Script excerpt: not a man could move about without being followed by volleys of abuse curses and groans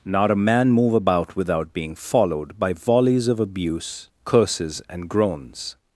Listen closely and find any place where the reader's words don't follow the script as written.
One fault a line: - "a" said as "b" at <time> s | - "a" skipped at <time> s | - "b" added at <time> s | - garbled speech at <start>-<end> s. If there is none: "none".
- "could" skipped at 0.7 s